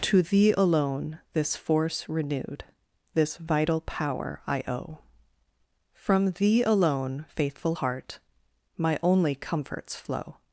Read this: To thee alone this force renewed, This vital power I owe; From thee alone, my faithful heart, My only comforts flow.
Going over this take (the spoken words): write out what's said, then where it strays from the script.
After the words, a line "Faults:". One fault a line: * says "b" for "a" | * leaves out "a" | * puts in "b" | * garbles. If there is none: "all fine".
To thee alone this force renewed, This vital power I owe; From thee alone, faithful heart, My only comforts flow.
Faults:
* leaves out "my"